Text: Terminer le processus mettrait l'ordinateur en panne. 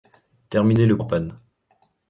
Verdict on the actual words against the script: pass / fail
fail